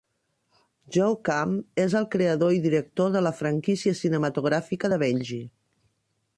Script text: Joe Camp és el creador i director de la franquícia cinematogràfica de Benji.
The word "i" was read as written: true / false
true